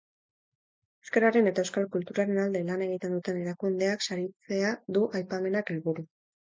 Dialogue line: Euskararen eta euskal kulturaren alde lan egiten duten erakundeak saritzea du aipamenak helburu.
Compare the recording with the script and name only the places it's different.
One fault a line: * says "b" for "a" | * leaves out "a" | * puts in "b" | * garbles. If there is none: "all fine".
all fine